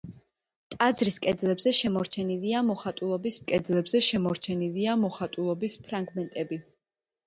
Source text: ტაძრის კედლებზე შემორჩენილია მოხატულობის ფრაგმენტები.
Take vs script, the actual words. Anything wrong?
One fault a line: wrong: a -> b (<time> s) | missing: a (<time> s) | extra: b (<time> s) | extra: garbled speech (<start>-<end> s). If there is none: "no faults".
extra: კედლებზე შემორჩენილია მოხატულობის (3.5 s)